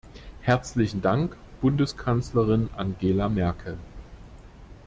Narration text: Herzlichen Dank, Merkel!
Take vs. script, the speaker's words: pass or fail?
fail